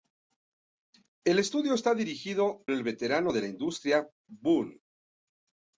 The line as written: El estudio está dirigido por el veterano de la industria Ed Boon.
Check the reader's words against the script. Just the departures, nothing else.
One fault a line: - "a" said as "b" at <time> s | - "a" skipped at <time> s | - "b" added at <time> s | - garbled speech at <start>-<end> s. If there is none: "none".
- "por" skipped at 2.6 s
- "Ed" skipped at 4.1 s